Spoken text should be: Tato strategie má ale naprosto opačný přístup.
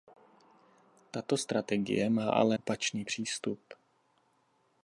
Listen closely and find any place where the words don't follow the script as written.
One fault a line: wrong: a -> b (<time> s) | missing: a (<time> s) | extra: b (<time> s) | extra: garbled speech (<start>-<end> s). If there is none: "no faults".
missing: naprosto (2.6 s)